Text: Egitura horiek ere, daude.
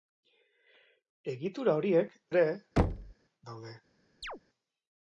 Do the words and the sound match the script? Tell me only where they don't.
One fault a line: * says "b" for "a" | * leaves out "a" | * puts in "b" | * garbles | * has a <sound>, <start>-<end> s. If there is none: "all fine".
* has a thud, 2.8-3.1 s
* has a chirp, 4.2-4.4 s